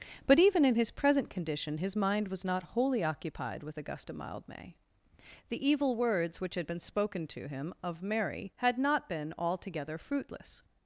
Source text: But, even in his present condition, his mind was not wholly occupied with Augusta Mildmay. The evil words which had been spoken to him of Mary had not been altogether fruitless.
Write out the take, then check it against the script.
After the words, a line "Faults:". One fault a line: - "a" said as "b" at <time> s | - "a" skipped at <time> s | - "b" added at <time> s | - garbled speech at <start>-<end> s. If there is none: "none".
But, even in his present condition, his mind was not wholly occupied with Augusta Mildmay. The evil words which had been spoken to him of Mary had not been altogether fruitless.
Faults:
none